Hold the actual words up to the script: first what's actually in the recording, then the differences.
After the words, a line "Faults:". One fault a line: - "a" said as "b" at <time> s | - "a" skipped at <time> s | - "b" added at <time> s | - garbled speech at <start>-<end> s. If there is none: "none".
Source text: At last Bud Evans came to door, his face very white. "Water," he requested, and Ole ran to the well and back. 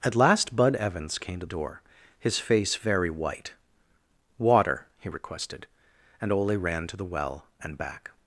At last Bud Evans came to door, his face very white. "Water," he requested, and Ole ran to the well and back.
Faults:
none